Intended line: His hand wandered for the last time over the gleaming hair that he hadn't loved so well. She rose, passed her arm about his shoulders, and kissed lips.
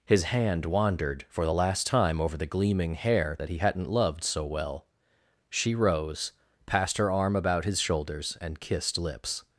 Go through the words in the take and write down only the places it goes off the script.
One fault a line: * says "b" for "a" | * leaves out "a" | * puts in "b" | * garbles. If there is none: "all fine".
all fine